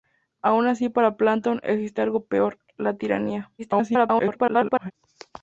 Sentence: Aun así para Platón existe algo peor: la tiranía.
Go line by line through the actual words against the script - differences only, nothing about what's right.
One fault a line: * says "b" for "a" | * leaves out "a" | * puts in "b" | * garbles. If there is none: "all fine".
* garbles